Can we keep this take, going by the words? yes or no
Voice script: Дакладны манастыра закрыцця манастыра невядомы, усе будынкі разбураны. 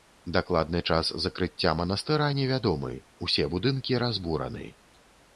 no